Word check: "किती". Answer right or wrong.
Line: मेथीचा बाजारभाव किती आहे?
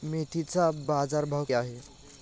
wrong